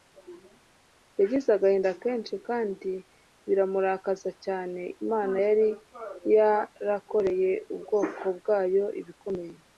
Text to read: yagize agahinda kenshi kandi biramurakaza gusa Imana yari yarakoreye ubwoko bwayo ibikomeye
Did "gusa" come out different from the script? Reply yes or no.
yes